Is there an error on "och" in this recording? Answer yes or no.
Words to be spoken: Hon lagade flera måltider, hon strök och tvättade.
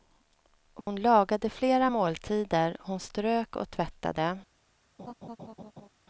no